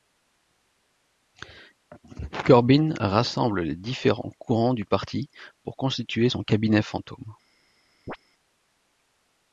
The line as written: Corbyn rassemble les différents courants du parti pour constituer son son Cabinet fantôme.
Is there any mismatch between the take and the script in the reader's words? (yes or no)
yes